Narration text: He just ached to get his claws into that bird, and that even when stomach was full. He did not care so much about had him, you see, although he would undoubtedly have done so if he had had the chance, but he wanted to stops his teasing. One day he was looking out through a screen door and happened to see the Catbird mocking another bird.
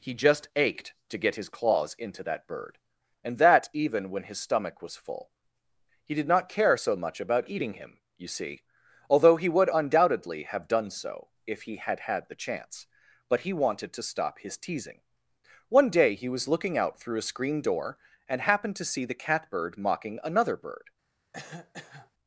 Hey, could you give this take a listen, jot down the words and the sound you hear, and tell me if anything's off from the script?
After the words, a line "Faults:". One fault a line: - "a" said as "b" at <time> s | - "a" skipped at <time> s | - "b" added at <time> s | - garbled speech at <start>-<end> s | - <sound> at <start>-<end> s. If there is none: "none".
He just ached to get his claws into that bird, and that even when his stomach was full. He did not care so much about eating him, you see, although he would undoubtedly have done so if he had had the chance, but he wanted to stop his teasing. One day he was looking out through a screen door and happened to see the Catbird mocking another bird.
Faults:
- "his" added at 4.2 s
- "had" said as "eating" at 7.5 s
- "stops" said as "stop" at 14.0 s
- cough at 21.3-22.1 s